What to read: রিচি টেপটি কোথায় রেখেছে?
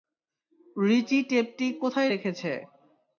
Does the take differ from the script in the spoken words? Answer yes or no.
no